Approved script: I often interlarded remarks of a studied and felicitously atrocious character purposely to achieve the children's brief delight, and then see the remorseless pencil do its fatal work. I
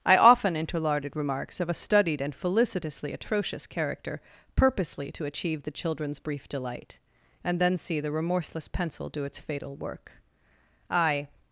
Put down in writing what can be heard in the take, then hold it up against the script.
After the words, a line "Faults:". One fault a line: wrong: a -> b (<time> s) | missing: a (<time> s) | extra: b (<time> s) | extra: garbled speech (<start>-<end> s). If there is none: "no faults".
I often interlarded remarks of a studied and felicitously atrocious character purposely to achieve the children's brief delight, and then see the remorseless pencil do its fatal work. I
Faults:
no faults